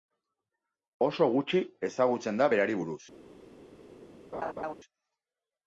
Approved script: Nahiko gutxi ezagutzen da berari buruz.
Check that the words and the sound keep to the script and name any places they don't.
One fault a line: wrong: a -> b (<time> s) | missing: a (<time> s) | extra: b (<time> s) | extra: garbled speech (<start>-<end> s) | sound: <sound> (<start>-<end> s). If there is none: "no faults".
wrong: Nahiko -> Oso (1.1 s)
sound: laugh (4.3-4.7 s)